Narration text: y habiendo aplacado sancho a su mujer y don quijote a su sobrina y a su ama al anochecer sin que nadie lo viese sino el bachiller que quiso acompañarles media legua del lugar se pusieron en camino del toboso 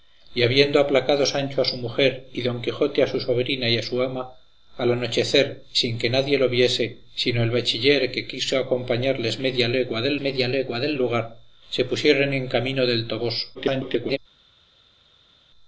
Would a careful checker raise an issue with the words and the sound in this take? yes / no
yes